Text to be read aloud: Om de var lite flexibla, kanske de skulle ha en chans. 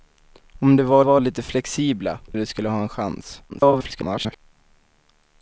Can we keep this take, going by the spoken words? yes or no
no